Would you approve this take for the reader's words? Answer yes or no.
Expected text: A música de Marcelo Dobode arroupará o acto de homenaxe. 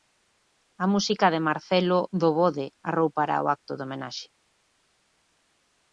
yes